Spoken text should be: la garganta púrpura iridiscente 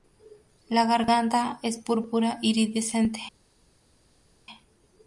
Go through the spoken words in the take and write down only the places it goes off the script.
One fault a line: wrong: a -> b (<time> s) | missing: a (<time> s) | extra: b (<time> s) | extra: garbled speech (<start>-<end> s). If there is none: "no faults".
extra: es (1.6 s)